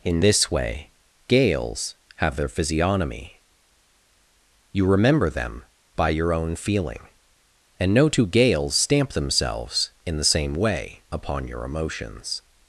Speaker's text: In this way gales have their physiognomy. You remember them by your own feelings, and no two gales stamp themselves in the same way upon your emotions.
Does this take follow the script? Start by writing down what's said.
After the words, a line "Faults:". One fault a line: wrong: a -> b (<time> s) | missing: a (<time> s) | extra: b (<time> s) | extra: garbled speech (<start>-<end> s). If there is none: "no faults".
In this way gales have their physiognomy. You remember them by your own feeling, and no two gales stamp themselves in the same way upon your emotions.
Faults:
wrong: feelings -> feeling (6.6 s)